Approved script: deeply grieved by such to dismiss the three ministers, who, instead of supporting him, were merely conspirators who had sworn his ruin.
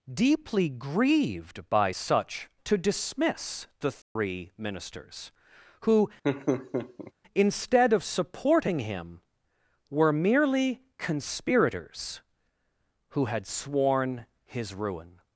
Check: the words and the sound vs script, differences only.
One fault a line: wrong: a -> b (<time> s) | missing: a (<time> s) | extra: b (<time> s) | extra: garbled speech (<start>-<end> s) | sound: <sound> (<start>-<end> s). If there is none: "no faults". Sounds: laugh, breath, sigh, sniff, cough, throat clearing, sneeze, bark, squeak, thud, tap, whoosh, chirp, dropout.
sound: dropout (4.0-4.2 s)
sound: laugh (6.2-7.1 s)